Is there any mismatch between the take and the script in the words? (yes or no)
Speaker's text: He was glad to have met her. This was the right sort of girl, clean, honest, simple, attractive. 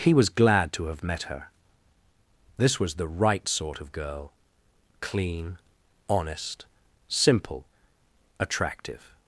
no